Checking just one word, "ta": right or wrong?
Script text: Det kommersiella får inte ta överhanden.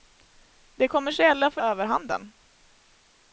wrong